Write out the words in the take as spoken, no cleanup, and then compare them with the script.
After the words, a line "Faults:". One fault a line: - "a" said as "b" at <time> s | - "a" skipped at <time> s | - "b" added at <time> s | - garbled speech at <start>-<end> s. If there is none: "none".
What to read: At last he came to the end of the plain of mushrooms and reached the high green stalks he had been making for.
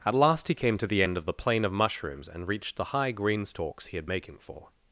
At last he came to the end of the plain of mushrooms and reached the high green stalks he had making for.
Faults:
- "been" skipped at 4.1 s